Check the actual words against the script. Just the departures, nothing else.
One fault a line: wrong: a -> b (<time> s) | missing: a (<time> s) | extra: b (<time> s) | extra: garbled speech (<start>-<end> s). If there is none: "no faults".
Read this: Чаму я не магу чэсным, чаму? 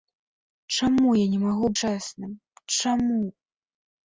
no faults